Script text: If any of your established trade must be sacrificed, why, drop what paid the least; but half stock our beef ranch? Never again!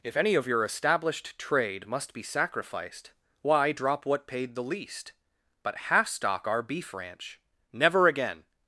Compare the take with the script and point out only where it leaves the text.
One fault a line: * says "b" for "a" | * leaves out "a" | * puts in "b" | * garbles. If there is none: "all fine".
all fine